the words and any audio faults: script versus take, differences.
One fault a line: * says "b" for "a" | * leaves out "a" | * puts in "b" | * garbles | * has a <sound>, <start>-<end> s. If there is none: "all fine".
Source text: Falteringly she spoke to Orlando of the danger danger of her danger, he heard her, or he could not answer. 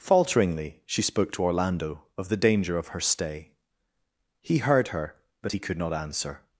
* leaves out "danger"
* says "stay" for "danger"
* says "but" for "or"